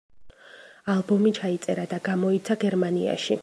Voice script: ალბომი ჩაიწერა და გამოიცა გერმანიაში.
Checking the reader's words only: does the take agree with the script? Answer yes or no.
yes